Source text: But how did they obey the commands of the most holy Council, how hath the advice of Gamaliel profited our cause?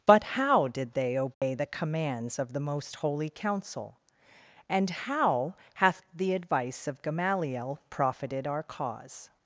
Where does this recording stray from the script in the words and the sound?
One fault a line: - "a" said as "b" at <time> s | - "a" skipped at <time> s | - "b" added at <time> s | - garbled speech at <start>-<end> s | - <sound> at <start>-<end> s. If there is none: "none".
- dropout at 1.3-1.4 s
- "and" added at 4.7 s